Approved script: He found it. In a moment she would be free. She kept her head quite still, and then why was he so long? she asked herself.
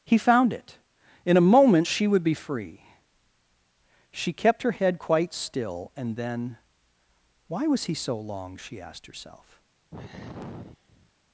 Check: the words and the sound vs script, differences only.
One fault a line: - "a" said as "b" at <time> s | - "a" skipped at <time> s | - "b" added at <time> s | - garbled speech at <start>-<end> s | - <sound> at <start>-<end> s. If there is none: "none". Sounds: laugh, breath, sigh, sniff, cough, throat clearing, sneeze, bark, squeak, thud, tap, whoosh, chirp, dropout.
- sigh at 9.9-11.1 s